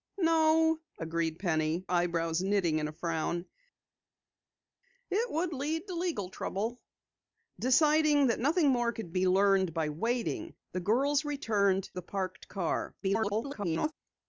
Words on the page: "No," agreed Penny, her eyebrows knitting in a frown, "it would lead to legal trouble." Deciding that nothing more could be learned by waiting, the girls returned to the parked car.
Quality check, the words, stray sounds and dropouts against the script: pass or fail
fail